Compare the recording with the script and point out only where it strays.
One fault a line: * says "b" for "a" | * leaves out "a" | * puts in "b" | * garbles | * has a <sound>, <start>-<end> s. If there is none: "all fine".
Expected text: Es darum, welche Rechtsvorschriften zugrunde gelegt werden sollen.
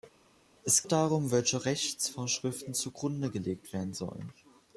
all fine